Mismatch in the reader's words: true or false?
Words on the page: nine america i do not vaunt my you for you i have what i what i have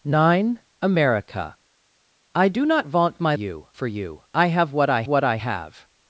false